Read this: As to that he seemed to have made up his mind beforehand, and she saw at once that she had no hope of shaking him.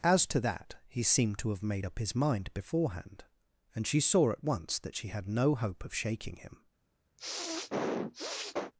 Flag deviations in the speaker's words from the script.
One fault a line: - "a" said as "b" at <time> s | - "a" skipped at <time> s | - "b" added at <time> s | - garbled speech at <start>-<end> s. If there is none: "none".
none